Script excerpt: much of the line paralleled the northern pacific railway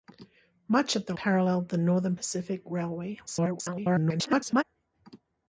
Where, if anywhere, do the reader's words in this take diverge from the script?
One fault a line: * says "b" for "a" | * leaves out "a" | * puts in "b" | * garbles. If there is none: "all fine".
* leaves out "line"
* garbles